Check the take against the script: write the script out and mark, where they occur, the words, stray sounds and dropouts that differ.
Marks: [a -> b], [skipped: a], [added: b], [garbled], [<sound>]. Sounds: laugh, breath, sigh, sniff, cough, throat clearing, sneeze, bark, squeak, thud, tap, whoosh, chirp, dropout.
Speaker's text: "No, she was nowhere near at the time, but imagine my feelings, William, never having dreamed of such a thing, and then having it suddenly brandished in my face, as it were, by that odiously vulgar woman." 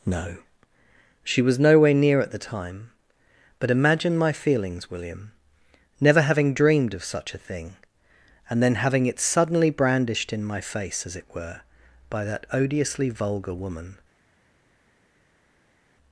"No, she was nowhere near at the time, but imagine my feelings, William, never having dreamed of such a thing, and then having it suddenly brandished in my face, as it were, by that odiously vulgar woman."